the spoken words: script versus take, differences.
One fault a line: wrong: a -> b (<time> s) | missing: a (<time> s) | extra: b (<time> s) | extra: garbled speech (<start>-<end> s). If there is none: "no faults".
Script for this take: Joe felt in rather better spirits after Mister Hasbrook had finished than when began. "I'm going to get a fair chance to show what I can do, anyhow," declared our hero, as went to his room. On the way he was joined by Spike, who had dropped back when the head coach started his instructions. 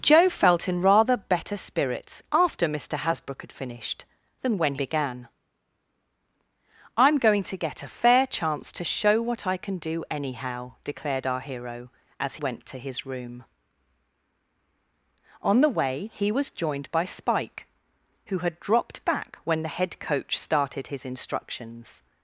no faults